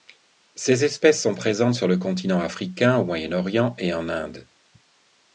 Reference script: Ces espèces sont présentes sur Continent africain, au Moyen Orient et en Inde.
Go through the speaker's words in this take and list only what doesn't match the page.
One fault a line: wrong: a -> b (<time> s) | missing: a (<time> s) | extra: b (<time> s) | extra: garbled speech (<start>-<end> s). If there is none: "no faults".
extra: le (1.9 s)